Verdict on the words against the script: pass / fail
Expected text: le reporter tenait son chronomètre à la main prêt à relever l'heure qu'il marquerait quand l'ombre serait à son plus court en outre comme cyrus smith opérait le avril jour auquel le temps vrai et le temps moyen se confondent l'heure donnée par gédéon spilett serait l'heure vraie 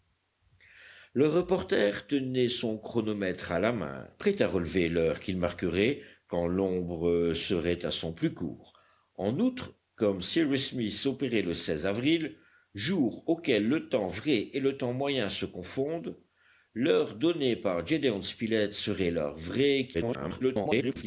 fail